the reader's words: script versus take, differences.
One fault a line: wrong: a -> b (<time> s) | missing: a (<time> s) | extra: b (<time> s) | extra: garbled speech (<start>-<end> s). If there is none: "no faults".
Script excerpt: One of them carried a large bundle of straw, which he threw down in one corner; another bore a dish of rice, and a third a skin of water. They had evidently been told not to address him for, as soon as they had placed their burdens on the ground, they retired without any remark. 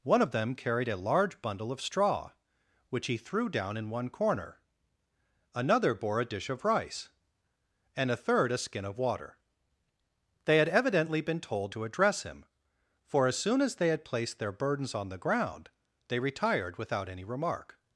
missing: not (11.8 s)